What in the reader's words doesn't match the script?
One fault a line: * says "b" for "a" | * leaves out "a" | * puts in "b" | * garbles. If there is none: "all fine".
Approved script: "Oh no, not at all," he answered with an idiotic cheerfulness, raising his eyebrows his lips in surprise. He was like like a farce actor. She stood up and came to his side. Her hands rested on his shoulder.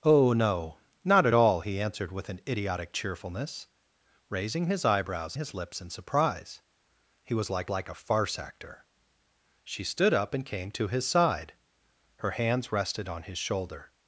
all fine